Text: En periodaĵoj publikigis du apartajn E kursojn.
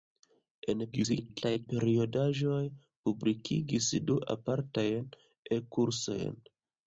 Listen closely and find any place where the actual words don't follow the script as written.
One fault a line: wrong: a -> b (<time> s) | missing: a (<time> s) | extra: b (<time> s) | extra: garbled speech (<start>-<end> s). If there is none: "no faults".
extra: garbled speech (0.9-1.7 s)